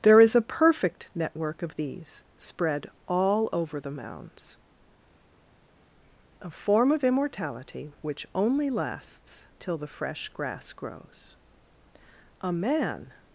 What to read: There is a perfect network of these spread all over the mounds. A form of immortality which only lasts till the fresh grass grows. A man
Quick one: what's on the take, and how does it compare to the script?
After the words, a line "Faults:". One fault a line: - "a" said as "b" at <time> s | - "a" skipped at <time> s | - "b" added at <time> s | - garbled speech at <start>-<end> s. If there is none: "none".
There is a perfect network of these spread all over the mounds. A form of immortality which only lasts till the fresh grass grows. A man
Faults:
none